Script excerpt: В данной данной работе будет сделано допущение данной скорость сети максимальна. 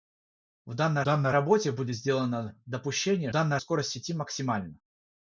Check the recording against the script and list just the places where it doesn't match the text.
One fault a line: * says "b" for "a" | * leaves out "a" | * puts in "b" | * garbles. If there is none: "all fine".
all fine